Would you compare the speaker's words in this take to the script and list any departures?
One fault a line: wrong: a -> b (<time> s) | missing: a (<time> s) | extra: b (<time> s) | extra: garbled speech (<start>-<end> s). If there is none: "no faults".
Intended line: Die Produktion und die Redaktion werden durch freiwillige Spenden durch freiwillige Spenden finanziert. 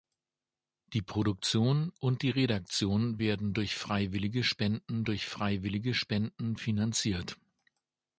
no faults